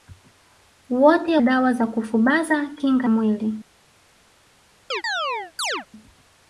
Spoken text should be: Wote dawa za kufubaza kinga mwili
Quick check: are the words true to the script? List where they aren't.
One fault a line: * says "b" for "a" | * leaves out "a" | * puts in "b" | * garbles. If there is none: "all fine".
all fine